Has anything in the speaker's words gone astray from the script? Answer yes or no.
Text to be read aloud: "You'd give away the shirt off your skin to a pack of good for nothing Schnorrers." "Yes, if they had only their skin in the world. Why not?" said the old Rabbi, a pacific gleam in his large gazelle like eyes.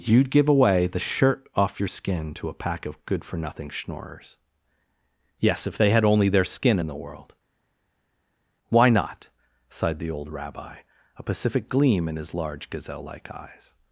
yes